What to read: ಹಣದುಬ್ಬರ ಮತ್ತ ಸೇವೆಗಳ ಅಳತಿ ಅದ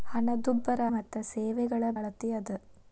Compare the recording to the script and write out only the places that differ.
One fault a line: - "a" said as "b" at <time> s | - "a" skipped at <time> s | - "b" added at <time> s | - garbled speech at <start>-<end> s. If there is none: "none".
none